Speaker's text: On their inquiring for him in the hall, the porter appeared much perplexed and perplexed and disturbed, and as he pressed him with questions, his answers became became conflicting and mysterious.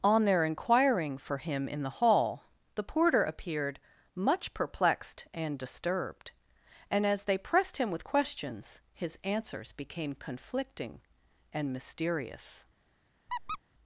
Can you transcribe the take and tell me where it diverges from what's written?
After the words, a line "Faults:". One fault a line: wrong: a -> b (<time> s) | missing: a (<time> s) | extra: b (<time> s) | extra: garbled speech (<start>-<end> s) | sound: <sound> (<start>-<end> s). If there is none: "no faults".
On their inquiring for him in the hall, the porter appeared much perplexed and disturbed, and as they pressed him with questions, his answers became conflicting and mysterious.
Faults:
missing: perplexed and (5.6 s)
wrong: he -> they (7.2 s)
missing: became (10.1 s)
sound: squeak (13.3-13.6 s)